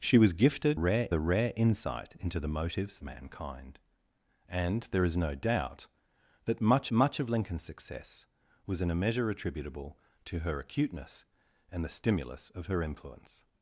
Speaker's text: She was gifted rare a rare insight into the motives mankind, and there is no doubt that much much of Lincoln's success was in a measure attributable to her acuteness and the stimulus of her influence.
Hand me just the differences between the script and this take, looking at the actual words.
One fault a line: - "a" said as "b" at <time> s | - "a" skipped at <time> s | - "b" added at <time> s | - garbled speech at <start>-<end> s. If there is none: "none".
none